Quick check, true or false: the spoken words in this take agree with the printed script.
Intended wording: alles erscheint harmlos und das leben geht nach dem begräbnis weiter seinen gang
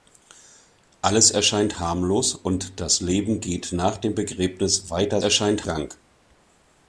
false